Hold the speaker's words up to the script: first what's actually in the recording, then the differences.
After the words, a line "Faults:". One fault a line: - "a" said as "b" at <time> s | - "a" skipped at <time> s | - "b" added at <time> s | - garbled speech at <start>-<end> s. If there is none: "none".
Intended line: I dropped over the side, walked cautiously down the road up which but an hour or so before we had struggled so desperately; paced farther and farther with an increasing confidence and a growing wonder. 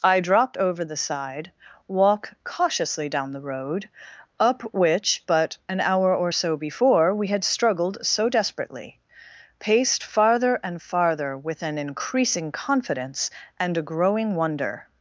I dropped over the side, walk cautiously down the road up which but an hour or so before we had struggled so desperately; paced farther and farther with an increasing confidence and a growing wonder.
Faults:
- "walked" said as "walk" at 1.9 s